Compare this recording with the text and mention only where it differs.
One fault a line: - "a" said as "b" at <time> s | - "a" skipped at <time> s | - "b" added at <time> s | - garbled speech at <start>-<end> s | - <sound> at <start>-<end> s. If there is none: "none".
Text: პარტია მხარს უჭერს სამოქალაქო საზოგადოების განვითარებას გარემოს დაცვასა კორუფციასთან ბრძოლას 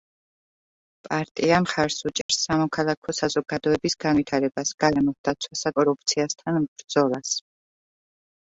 - dropout at 2.2-2.3 s